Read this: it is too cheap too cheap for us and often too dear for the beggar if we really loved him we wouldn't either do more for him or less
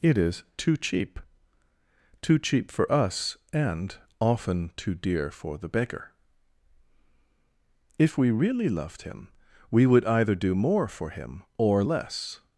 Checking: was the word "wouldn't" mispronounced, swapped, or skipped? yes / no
yes